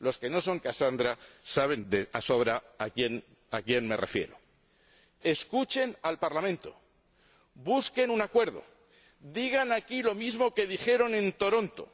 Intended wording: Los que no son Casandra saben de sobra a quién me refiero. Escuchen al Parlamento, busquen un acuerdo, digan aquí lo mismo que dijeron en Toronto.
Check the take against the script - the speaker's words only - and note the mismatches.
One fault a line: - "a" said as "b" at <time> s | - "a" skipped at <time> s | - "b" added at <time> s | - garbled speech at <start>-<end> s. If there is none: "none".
none